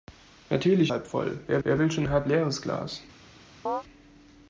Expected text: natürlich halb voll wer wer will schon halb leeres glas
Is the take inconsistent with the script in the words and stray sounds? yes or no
yes